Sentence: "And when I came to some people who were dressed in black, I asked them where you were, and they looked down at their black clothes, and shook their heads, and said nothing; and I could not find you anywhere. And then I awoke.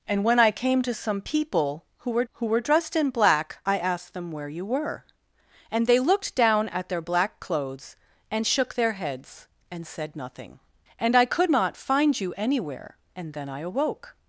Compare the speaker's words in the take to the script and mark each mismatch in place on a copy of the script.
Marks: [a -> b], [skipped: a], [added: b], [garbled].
"And when I came to some people who were [added: who were] dressed in black, I asked them where you were, and they looked down at their black clothes, and shook their heads, and said nothing; and I could not find you anywhere. And then I awoke.